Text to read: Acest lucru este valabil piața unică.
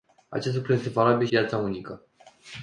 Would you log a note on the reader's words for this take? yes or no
no